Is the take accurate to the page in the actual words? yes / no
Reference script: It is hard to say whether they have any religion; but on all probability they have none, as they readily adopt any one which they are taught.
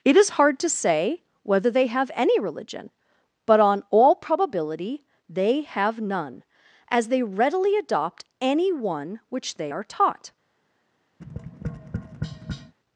yes